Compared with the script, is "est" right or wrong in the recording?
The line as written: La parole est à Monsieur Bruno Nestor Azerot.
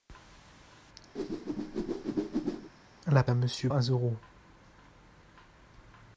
wrong